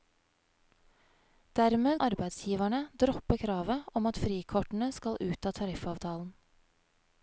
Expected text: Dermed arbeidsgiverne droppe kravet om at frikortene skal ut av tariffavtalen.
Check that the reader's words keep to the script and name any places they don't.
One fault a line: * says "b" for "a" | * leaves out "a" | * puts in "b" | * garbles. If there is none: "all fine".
all fine